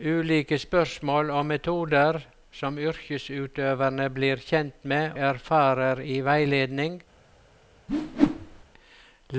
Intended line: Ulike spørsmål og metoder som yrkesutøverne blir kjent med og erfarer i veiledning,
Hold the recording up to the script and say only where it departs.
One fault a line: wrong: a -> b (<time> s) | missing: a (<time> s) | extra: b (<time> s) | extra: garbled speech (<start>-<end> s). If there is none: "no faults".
missing: og (5.1 s)